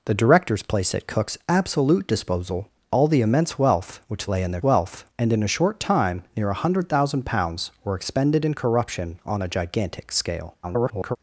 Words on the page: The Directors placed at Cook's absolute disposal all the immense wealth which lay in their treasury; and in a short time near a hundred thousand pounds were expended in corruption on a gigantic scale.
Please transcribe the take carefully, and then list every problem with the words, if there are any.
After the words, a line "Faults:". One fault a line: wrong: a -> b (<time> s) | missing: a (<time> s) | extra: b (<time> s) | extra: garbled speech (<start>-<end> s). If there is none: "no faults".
The Directors placed at Cook's absolute disposal all the immense wealth which lay in their wealth; and in a short time near a hundred thousand pounds were expended in corruption on a gigantic scale. [garbled]
Faults:
wrong: treasury -> wealth (4.6 s)
extra: garbled speech (10.6-11.2 s)